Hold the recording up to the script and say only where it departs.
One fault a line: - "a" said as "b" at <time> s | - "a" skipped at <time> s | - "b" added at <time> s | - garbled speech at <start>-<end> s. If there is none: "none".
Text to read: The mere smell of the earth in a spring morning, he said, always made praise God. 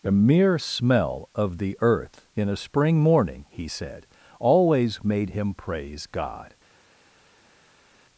- "him" added at 5.3 s